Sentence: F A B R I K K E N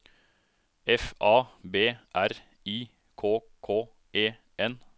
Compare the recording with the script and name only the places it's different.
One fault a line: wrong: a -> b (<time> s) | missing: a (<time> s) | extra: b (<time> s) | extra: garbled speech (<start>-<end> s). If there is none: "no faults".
no faults